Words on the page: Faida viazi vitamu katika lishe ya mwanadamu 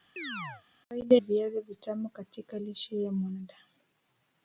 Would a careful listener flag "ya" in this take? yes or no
no